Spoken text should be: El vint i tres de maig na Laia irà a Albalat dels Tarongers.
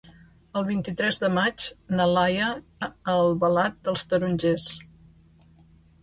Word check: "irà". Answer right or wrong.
wrong